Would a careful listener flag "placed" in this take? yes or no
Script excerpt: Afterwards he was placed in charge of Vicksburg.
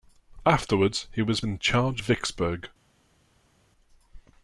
yes